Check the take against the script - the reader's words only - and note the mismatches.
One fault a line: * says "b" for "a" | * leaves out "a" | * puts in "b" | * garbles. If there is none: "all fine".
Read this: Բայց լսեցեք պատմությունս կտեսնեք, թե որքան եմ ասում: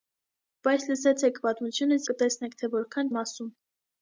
all fine